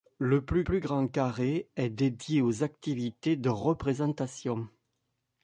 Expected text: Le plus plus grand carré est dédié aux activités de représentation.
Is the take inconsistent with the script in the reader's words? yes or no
no